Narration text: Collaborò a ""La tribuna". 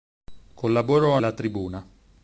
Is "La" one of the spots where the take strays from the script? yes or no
no